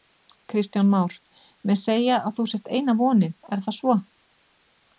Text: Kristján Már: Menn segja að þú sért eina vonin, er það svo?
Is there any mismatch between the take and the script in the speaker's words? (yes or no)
no